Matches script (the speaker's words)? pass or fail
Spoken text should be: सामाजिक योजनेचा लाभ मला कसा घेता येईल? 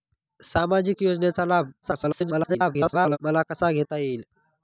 fail